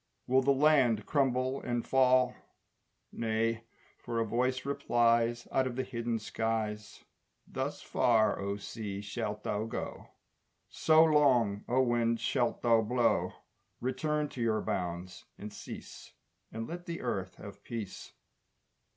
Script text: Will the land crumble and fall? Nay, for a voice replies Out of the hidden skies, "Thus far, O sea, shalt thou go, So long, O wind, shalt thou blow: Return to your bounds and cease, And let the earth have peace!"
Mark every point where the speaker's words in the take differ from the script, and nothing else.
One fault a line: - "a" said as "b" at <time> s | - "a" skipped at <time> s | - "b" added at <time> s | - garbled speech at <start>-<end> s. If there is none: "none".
none